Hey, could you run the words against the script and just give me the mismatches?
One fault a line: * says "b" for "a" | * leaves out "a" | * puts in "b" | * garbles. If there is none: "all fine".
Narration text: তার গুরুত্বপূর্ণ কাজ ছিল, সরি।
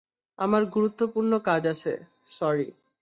* says "আমার" for "তার"
* says "আছে" for "ছিল"